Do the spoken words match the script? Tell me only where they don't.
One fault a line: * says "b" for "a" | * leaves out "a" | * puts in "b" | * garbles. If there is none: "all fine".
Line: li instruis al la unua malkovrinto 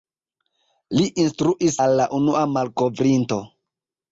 all fine